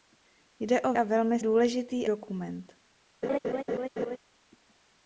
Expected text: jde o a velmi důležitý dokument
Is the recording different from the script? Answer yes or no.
no